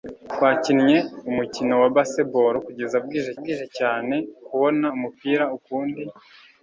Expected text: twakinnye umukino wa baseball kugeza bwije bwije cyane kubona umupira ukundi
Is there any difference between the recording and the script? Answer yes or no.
no